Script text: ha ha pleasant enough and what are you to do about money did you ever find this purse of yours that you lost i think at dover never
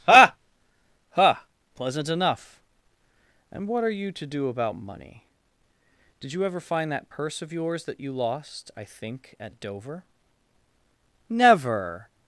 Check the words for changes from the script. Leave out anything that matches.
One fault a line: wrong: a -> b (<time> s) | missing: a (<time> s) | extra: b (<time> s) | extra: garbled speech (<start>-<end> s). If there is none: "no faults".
wrong: this -> that (6.9 s)